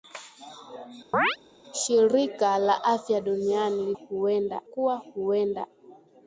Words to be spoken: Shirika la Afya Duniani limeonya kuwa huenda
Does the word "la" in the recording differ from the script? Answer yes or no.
no